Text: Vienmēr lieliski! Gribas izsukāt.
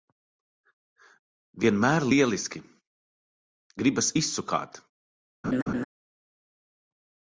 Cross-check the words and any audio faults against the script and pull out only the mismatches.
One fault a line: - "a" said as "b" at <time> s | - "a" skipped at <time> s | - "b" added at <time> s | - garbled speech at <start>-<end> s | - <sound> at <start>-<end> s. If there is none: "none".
- laugh at 5.4-5.8 s